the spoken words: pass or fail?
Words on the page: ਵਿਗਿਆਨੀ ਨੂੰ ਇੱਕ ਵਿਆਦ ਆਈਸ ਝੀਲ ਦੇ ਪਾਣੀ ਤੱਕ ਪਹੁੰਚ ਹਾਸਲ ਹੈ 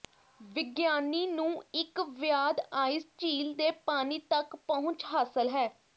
pass